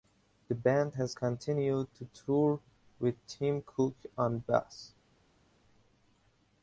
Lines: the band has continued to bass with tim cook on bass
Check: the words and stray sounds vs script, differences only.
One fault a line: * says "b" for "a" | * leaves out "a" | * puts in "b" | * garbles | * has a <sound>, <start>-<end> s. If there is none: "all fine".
* says "tour" for "bass"